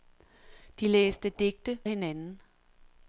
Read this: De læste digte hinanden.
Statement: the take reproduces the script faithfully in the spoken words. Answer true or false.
true